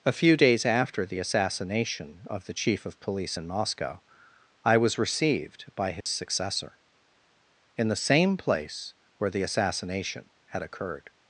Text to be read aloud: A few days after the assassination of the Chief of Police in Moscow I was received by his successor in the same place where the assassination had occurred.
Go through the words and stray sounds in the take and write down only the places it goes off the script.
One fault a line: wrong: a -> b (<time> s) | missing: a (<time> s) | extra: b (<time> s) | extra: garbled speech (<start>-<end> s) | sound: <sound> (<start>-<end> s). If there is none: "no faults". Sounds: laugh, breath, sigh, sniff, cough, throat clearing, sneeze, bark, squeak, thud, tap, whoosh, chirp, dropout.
sound: dropout (6.0-6.1 s)